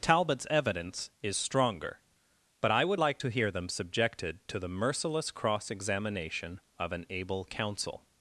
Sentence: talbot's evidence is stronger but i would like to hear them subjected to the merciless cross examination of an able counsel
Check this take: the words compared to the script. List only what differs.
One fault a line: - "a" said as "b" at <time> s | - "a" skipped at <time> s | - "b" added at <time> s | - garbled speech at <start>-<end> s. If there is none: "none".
none